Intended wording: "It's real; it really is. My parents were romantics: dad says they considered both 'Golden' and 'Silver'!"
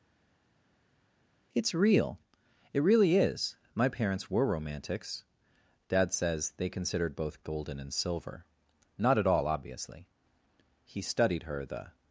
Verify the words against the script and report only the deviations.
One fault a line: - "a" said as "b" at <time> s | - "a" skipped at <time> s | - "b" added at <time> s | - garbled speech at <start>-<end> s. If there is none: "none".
- "Not at all obviously he studied her the" added at 9.0 s